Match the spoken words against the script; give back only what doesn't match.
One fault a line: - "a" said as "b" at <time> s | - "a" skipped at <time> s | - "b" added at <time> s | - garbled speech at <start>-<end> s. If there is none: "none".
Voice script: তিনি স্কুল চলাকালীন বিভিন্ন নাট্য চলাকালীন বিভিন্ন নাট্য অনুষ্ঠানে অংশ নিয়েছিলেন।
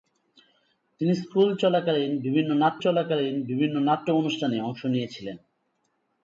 none